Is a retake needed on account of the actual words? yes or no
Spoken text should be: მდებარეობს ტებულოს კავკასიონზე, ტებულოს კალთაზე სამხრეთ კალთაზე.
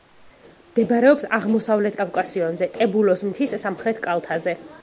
yes